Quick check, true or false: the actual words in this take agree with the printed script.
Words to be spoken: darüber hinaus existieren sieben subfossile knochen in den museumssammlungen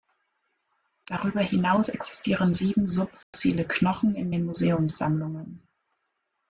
true